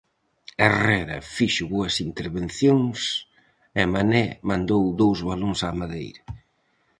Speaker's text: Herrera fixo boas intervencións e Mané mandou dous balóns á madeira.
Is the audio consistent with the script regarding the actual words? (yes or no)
yes